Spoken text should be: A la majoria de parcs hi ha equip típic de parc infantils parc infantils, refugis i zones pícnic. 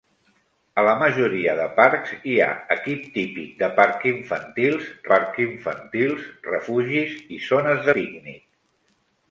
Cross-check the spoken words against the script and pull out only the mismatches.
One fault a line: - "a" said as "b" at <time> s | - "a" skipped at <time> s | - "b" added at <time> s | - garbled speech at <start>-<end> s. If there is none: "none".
none